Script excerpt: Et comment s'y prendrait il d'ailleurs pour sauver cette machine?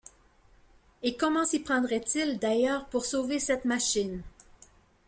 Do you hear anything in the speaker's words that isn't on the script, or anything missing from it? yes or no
no